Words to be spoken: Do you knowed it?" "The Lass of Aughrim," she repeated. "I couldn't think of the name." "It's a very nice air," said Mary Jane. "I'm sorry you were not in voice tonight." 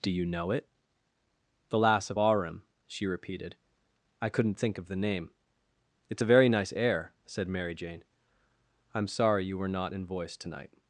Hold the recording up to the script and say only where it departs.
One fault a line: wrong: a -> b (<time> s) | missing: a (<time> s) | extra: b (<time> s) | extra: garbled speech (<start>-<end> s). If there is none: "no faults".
wrong: knowed -> know (0.2 s)